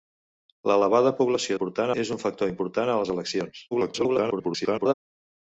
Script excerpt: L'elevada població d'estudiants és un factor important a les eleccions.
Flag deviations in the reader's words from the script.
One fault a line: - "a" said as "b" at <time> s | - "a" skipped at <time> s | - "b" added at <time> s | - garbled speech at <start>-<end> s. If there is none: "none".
- "d'estudiants" said as "important" at 1.5 s
- garbled speech at 3.7-4.9 s